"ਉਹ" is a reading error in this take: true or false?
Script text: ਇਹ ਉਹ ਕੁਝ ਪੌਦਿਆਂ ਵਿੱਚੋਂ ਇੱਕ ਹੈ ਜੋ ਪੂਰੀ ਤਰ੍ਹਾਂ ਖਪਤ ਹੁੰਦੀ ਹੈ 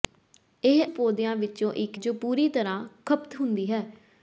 true